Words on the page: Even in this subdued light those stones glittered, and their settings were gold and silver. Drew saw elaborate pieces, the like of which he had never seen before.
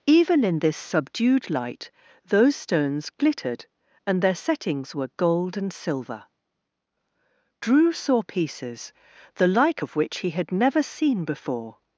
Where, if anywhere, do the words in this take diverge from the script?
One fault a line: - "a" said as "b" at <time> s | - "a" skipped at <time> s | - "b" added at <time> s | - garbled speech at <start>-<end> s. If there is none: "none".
- "elaborate" skipped at 8.2 s